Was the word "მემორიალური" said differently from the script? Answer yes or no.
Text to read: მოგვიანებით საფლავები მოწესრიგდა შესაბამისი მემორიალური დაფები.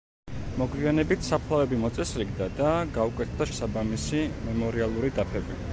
no